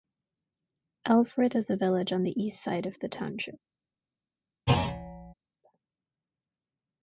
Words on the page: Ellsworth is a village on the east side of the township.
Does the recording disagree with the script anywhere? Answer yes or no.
no